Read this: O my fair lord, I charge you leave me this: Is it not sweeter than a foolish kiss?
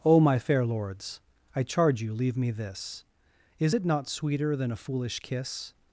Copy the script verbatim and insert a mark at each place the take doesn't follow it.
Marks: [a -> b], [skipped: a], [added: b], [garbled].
O my fair [lord, -> lords] I charge you leave me this: Is it not sweeter than a foolish kiss?